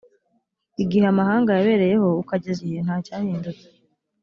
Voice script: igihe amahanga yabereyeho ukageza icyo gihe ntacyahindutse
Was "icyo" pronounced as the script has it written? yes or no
no